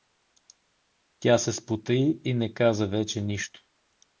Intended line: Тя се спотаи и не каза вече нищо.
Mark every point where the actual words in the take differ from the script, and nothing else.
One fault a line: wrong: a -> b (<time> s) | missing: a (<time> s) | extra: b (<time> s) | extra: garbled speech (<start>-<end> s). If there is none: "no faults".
no faults